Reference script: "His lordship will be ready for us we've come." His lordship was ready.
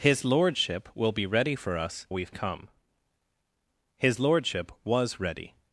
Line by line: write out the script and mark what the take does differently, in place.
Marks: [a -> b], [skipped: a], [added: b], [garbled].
"His lordship will be ready for us we've come." His lordship was ready.